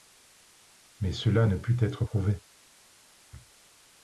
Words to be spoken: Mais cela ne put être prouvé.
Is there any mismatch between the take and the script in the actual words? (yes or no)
no